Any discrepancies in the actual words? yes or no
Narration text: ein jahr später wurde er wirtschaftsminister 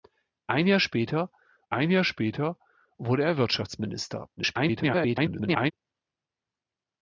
yes